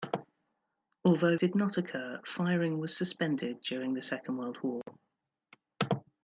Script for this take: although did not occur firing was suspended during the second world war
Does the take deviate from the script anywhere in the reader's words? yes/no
no